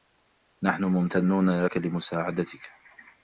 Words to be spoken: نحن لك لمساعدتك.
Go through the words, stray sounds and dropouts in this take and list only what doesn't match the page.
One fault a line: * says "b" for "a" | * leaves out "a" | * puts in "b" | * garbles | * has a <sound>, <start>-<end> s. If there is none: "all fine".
* puts in "ممتنون"